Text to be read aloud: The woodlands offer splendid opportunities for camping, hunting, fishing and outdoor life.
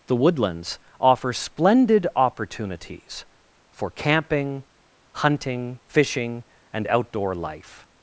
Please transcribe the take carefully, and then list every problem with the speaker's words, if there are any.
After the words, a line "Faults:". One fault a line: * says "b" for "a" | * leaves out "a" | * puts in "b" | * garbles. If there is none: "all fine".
The woodlands offer splendid opportunities for camping, hunting, fishing and outdoor life.
Faults:
all fine